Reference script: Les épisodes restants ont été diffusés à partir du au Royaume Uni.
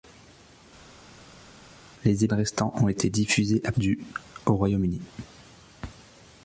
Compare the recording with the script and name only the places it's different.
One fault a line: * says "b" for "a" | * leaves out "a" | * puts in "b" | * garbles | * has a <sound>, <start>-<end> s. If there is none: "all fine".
* leaves out "épisodes"
* leaves out "partir"